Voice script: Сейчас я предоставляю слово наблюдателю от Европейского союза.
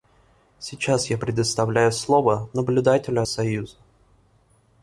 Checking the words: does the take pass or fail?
fail